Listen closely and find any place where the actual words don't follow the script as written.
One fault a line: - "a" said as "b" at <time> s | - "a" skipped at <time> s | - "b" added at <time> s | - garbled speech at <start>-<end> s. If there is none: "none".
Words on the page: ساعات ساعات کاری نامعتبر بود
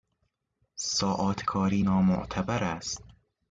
- "ساعات" skipped at 1.4 s
- "بود" said as "است" at 2.6 s